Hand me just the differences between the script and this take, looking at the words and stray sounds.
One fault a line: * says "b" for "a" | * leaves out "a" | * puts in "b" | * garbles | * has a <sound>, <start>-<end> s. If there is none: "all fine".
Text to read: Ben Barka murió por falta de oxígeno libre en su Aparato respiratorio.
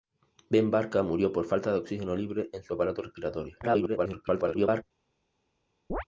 * garbles
* has a chirp, 5.9-6.0 s